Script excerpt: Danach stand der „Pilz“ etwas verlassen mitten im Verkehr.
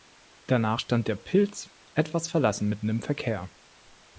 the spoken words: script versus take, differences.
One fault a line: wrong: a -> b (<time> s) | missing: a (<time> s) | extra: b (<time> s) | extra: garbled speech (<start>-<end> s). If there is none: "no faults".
no faults